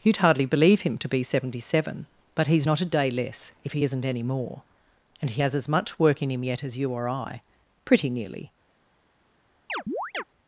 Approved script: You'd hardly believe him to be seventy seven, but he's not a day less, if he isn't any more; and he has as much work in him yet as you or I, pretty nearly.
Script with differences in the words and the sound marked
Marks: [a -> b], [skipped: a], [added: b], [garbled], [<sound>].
You'd hardly believe him to be seventy seven, but he's not a day less, if he isn't any more; and he has as much work in him yet as you or I, pretty nearly. [chirp]